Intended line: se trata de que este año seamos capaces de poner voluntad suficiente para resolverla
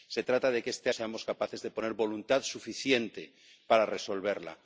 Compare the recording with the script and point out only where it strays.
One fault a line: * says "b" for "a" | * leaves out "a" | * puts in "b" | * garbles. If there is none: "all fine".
* leaves out "año"